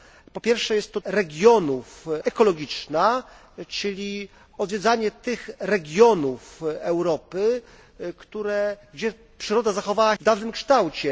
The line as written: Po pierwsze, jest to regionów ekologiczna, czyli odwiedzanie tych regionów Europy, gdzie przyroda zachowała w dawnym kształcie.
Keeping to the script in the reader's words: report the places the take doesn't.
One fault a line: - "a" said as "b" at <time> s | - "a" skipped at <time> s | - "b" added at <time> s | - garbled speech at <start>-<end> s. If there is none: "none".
none